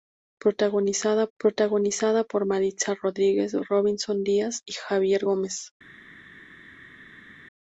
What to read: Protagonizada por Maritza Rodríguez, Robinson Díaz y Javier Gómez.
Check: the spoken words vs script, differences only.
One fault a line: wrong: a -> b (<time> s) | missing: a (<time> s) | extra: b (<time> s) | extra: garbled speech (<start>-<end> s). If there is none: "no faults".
extra: protagonizada (1.4 s)